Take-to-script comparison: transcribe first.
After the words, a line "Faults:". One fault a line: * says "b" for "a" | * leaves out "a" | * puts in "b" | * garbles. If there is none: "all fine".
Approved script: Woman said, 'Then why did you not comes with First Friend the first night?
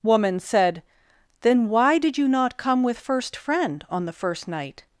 Woman said, 'Then why did you not come with First Friend on the first night?
Faults:
* says "come" for "comes"
* puts in "on"